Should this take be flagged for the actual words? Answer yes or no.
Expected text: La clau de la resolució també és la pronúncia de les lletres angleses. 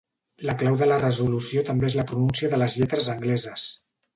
no